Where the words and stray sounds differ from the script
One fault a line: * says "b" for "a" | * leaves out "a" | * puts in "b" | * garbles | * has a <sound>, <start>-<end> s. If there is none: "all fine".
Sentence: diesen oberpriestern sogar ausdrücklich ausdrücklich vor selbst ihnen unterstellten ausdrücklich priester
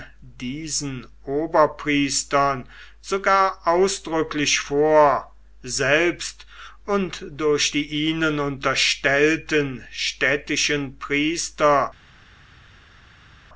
* leaves out "ausdrücklich"
* puts in "und durch die"
* says "städtischen" for "ausdrücklich"